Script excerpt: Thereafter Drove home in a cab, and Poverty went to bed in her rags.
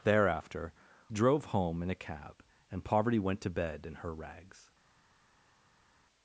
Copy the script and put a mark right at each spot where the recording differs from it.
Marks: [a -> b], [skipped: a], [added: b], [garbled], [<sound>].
Thereafter Drove home in a cab, and Poverty went to bed in her rags.